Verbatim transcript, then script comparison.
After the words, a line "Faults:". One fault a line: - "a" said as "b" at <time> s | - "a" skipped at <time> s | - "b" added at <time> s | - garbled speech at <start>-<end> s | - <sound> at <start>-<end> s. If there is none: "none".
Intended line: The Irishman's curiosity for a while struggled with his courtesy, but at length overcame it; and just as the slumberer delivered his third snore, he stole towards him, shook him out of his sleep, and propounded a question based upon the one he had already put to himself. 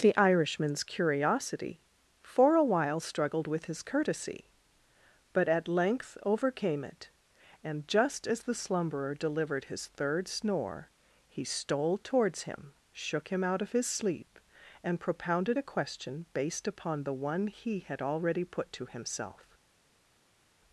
The Irishman's curiosity for a while struggled with his courtesy, but at length overcame it; and just as the slumberer delivered his third snore, he stole towards him, shook him out of his sleep, and propounded a question based upon the one he had already put to himself.
Faults:
none